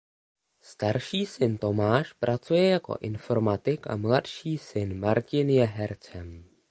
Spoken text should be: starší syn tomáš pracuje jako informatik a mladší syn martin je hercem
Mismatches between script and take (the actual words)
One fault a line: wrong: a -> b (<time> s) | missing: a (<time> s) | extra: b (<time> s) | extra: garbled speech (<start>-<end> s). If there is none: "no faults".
no faults